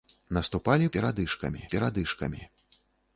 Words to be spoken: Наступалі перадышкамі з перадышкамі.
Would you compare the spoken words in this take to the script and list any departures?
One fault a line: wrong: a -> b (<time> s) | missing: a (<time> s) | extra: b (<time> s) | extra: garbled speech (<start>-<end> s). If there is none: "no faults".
no faults